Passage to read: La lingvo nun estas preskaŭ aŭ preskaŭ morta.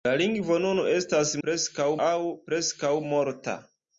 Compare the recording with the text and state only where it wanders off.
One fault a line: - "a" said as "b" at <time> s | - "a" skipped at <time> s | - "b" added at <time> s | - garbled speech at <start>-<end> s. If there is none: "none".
none